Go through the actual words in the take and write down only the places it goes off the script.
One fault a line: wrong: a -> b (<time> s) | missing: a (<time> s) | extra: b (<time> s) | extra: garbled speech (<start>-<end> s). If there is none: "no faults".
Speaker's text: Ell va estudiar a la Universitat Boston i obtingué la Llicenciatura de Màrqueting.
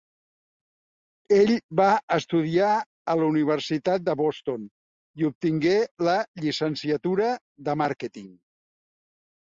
extra: de (4.1 s)